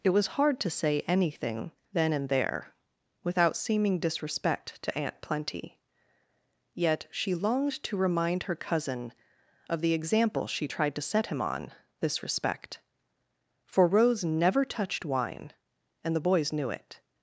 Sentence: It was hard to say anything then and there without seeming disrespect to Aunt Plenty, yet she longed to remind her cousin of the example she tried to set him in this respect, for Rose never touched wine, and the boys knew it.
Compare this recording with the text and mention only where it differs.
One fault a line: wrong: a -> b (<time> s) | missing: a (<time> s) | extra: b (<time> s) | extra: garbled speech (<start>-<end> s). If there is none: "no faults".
wrong: in -> on (11.4 s)